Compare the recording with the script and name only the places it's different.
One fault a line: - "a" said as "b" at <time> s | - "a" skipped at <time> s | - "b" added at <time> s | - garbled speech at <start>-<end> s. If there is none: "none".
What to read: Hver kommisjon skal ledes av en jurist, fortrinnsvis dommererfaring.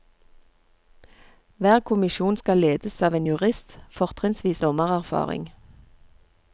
none